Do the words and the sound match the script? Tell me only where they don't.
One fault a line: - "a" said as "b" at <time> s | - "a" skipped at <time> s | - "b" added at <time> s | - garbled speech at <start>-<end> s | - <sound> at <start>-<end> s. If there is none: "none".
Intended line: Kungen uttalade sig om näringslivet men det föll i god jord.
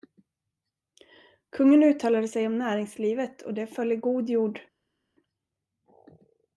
- "men" said as "och" at 3.4 s